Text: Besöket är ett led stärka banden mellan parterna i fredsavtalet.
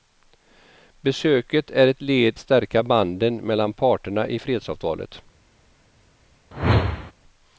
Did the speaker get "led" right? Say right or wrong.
right